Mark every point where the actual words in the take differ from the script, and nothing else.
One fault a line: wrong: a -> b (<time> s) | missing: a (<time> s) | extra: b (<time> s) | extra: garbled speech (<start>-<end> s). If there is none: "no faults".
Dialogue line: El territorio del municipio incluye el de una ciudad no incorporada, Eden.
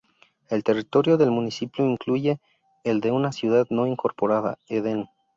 no faults